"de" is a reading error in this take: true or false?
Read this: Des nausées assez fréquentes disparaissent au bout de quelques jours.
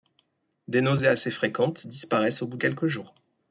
true